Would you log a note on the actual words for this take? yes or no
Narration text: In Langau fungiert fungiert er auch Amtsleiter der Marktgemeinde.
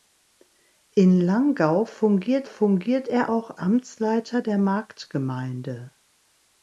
no